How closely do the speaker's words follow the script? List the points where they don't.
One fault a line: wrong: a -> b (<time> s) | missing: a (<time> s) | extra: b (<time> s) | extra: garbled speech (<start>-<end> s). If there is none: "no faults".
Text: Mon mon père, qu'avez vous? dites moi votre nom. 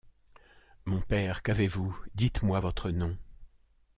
missing: mon (1.0 s)